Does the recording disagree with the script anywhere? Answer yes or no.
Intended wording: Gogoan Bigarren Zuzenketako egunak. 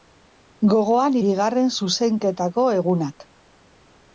no